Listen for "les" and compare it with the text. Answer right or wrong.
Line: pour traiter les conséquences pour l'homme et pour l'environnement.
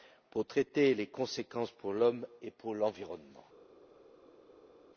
right